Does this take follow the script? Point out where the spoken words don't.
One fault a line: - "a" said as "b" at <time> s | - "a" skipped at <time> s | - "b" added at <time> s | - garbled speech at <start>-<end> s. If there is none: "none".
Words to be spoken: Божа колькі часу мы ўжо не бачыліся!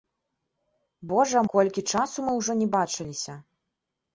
none